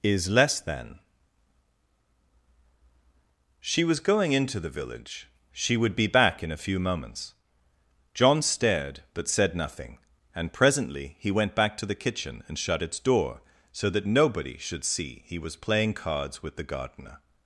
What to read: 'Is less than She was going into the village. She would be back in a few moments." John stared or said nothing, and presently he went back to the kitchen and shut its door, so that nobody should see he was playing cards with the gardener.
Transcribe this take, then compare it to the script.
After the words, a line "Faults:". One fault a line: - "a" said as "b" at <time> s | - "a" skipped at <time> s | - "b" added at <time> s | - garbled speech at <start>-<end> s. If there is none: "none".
'Is less than She was going into the village. She would be back in a few moments." John stared but said nothing, and presently he went back to the kitchen and shut its door, so that nobody should see he was playing cards with the gardener.
Faults:
- "or" said as "but" at 9.1 s